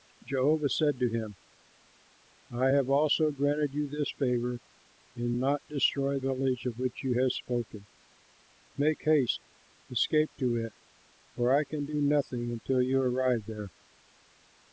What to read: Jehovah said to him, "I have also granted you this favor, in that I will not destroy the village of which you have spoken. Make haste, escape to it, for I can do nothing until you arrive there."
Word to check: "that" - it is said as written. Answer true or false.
false